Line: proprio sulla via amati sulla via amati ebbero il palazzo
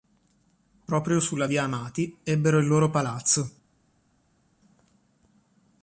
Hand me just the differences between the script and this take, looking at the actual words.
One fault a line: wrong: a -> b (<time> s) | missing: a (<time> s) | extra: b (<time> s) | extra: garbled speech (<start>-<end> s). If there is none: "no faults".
missing: sulla via amati (2.2 s)
extra: loro (2.7 s)